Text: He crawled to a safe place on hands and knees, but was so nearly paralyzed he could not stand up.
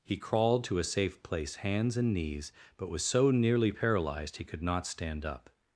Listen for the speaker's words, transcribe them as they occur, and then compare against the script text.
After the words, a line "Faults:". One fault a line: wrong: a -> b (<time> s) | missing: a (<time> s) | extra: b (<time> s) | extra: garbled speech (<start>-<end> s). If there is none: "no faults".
He crawled to a safe place hands and knees, but was so nearly paralyzed he could not stand up.
Faults:
missing: on (1.6 s)